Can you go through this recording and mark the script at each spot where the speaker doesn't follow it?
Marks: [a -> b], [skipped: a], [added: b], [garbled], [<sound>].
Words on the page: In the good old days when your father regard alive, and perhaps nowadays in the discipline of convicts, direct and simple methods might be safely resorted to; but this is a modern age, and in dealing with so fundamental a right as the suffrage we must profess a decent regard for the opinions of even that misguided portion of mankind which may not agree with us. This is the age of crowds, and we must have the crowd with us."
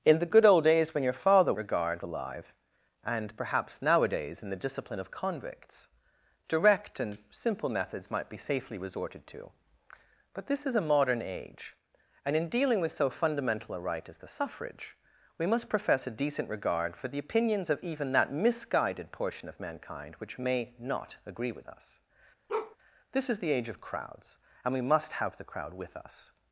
In the good old days when your father regard alive, and perhaps nowadays in the discipline of convicts, direct and simple methods might be safely resorted to; but this is a modern age, and in dealing with so fundamental a right as the suffrage we must profess a decent regard for the opinions of even that misguided portion of mankind which may not agree with us. [bark] This is the age of crowds, and we must have the crowd with us."